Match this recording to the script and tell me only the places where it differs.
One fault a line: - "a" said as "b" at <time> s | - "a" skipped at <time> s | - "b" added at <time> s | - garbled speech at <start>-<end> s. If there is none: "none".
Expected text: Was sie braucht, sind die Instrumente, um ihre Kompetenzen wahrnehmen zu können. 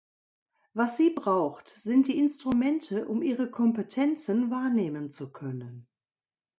none